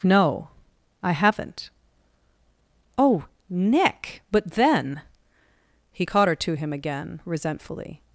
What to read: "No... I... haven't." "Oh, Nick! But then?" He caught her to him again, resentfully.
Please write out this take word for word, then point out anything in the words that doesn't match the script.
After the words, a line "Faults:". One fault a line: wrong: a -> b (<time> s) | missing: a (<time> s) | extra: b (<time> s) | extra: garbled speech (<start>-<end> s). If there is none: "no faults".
"No... I... haven't." "Oh, Nick! But then?" He caught her to him again, resentfully.
Faults:
no faults